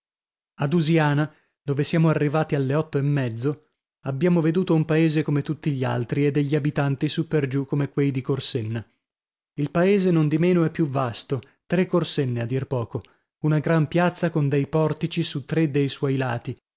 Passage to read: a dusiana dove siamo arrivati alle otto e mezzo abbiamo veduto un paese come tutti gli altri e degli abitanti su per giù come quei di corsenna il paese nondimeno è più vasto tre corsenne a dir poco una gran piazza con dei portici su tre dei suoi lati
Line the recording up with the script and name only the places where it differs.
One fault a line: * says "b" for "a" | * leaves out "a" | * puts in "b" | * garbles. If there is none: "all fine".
all fine